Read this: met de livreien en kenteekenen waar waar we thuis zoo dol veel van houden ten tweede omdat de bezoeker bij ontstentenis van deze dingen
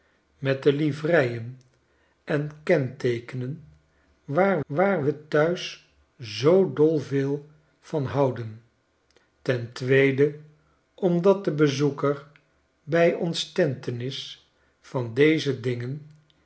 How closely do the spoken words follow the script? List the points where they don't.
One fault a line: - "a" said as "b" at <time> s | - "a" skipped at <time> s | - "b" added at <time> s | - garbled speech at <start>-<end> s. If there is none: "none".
none